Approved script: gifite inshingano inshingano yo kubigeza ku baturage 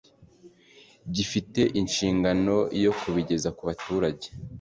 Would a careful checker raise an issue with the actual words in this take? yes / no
yes